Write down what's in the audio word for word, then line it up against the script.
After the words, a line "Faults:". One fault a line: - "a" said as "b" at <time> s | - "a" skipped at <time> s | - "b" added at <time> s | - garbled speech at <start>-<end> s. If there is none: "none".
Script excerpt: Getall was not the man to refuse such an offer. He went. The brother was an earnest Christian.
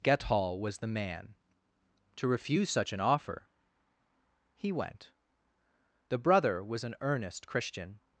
Getall was the man to refuse such an offer. He went. The brother was an earnest Christian.
Faults:
- "not" skipped at 0.8 s